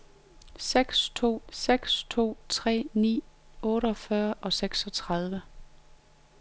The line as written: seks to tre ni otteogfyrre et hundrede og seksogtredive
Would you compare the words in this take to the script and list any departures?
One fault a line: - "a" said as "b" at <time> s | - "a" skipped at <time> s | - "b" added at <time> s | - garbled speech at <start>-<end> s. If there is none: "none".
- "seks to" added at 1.5 s
- "et hundrede" skipped at 4.3 s